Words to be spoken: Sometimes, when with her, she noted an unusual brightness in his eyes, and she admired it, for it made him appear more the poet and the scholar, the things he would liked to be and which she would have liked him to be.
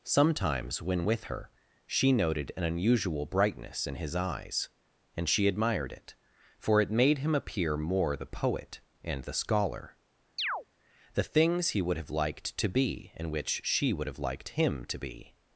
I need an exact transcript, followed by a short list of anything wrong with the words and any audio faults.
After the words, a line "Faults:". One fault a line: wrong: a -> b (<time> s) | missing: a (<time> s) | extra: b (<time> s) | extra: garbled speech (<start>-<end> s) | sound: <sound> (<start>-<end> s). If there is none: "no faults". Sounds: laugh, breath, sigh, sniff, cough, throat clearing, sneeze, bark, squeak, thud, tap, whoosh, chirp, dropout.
Sometimes, when with her, she noted an unusual brightness in his eyes, and she admired it, for it made him appear more the poet and the scholar, the things he would have liked to be and which she would have liked him to be.
Faults:
sound: chirp (10.4-10.6 s)
extra: have (12.0 s)